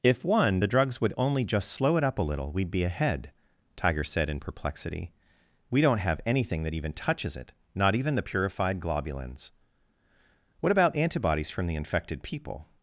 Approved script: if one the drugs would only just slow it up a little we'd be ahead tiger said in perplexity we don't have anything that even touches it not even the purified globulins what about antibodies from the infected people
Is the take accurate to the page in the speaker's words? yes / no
yes